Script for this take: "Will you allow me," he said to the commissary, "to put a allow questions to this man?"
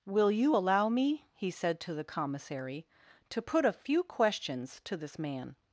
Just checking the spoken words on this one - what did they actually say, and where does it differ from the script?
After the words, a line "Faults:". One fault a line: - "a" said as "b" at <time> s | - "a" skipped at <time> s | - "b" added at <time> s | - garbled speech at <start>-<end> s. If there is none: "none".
"Will you allow me," he said to the commissary, "to put a few questions to this man?"
Faults:
- "allow" said as "few" at 3.7 s